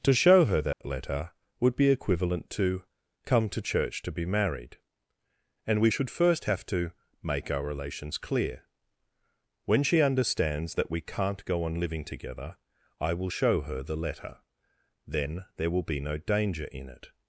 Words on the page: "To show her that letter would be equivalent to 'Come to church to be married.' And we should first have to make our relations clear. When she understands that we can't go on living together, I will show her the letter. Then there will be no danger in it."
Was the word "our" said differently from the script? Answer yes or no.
no